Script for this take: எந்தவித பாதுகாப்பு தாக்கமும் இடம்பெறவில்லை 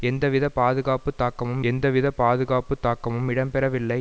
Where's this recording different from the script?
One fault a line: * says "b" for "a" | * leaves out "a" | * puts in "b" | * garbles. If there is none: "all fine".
* puts in "எந்தவித பாதுகாப்பு தாக்கமும்"